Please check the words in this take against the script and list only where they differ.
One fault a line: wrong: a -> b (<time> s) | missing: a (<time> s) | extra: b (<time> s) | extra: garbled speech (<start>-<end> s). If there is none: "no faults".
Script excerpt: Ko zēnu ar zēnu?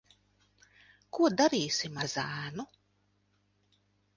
wrong: zēnu -> darīsim (1.4 s)